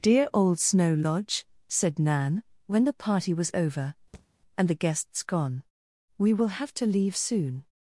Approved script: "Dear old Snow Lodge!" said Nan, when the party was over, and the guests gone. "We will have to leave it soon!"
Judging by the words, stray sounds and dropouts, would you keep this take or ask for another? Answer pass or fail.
fail